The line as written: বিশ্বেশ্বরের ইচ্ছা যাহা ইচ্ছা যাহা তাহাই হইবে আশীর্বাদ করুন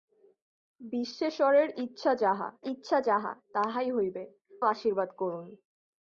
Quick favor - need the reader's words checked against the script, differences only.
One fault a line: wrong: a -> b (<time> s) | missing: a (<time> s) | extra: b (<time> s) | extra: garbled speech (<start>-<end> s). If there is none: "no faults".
no faults